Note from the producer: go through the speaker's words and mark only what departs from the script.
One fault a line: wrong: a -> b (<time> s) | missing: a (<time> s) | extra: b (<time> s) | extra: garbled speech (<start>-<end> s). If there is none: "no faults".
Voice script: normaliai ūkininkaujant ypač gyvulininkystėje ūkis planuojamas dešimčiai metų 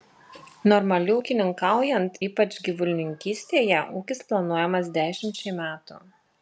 no faults